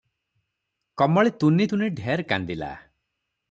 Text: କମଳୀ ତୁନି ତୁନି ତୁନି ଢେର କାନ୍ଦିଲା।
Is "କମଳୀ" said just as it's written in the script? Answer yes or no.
yes